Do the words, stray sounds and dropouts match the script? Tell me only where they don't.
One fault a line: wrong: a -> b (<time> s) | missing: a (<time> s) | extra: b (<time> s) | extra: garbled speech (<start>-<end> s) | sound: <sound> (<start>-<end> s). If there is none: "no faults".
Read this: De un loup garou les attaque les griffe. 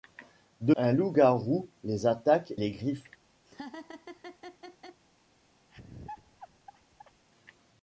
sound: laugh (3.4-5.0 s)
sound: laugh (5.7-7.2 s)